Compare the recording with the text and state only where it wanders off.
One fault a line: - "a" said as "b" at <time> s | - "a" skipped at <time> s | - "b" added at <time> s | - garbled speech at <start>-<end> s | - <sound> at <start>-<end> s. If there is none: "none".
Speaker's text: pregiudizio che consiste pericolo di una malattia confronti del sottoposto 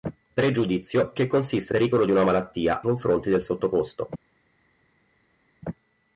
none